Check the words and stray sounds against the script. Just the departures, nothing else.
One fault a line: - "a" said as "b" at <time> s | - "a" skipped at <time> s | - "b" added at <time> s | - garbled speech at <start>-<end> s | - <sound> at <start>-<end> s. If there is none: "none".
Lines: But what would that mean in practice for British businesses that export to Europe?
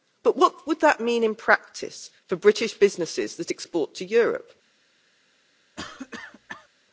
- cough at 5.8-6.7 s